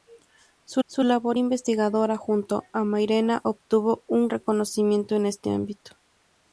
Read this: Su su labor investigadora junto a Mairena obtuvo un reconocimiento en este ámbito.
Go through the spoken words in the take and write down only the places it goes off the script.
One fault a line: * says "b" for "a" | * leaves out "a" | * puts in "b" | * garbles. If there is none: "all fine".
all fine